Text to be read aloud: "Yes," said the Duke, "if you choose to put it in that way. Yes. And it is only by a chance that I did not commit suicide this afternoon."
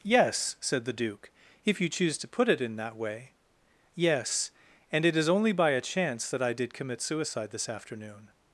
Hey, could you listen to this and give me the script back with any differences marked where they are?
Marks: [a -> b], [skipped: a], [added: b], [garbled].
"Yes," said the Duke, "if you choose to put it in that way. Yes. And it is only by a chance that I did [skipped: not] commit suicide this afternoon."